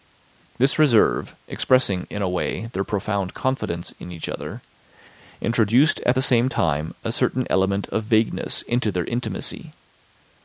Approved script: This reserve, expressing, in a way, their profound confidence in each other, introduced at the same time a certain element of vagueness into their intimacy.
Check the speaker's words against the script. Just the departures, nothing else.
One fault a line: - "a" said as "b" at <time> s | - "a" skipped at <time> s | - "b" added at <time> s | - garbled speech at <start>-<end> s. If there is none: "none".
none